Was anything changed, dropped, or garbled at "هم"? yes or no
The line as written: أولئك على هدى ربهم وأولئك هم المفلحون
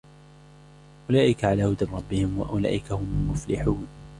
no